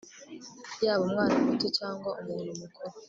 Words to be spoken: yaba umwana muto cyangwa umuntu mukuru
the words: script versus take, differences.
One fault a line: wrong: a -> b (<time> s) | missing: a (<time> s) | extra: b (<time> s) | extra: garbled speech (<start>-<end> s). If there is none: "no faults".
no faults